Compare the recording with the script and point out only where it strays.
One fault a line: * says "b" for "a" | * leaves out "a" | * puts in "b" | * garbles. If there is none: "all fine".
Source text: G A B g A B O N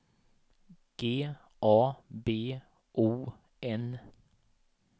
* leaves out "g A B"